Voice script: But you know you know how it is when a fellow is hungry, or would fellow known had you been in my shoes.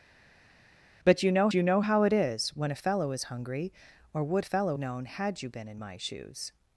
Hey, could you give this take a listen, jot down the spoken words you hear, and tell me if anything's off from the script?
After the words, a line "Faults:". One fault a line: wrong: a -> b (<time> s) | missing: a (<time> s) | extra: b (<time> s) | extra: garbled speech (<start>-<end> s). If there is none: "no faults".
But you know you know how it is when a fellow is hungry, or would fellow known had you been in my shoes.
Faults:
no faults